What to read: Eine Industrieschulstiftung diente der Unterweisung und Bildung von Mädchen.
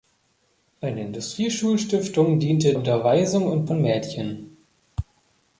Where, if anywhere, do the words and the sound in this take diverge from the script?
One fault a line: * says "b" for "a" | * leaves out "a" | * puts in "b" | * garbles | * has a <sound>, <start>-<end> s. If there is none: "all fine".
* leaves out "der"
* leaves out "Bildung"